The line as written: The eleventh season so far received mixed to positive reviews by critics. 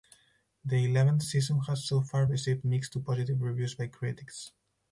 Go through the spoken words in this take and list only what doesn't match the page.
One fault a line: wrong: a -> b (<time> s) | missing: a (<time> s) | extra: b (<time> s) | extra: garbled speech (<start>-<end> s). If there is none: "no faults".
extra: has (1.7 s)